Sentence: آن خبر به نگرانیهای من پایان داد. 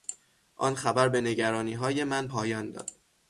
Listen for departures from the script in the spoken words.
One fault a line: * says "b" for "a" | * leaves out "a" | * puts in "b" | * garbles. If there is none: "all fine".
all fine